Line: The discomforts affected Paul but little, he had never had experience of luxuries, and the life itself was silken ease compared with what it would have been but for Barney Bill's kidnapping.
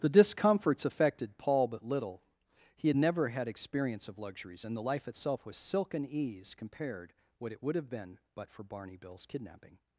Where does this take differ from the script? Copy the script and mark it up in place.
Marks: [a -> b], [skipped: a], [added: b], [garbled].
The discomforts affected Paul but little, he had never had experience of luxuries, and the life itself was silken ease compared [skipped: with] what it would have been but for Barney Bill's kidnapping.